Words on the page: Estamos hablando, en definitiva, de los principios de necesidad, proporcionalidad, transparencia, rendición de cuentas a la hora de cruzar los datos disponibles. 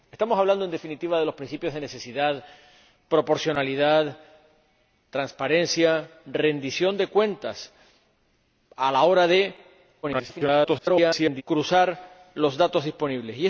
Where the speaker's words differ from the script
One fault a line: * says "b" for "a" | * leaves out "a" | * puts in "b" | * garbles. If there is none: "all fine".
* garbles